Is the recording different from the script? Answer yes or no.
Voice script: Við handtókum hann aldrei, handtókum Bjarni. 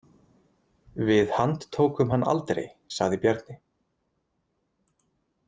yes